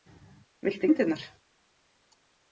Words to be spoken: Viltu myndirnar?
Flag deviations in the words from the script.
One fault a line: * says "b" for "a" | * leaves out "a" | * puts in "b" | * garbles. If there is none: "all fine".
all fine